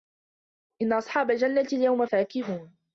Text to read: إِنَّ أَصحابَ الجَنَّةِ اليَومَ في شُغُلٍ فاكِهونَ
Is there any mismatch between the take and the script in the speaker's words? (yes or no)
yes